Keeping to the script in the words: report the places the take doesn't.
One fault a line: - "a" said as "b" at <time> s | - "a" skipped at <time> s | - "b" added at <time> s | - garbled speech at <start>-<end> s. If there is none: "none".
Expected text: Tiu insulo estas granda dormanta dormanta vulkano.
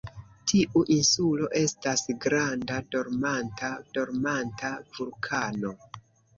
none